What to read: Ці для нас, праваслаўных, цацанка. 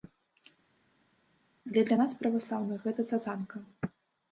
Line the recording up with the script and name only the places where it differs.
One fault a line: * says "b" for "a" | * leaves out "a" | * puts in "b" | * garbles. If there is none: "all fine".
* says "Але" for "Ці"
* puts in "гэта"